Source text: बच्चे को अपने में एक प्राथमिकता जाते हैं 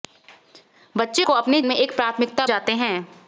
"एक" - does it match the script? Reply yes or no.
yes